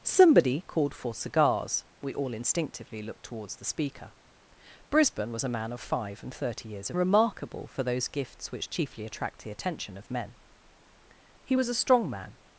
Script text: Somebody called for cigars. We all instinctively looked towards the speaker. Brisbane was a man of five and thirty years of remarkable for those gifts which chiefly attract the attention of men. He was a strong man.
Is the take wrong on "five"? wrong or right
right